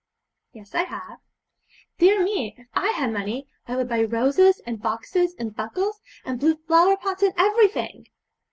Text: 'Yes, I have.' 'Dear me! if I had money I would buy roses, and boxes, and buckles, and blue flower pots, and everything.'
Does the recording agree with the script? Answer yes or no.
yes